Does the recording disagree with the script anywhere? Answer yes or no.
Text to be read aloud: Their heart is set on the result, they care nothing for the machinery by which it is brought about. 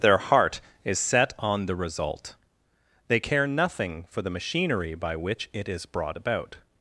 no